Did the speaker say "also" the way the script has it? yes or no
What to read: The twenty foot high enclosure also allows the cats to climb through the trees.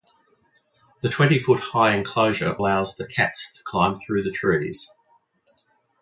no